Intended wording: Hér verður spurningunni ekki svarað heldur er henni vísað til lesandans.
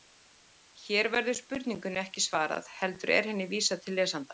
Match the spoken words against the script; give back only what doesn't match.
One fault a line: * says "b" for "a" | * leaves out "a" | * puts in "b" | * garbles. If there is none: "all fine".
all fine